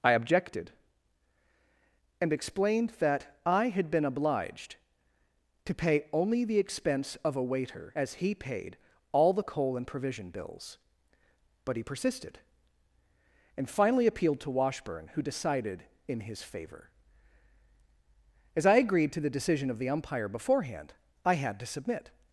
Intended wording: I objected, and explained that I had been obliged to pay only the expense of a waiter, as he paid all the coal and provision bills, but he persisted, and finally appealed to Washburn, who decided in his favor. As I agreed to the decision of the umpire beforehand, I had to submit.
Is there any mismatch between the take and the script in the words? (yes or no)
no